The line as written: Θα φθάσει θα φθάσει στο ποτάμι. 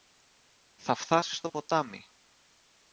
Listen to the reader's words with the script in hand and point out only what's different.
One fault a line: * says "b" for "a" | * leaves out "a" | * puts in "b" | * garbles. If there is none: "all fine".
* leaves out "θα φθάσει"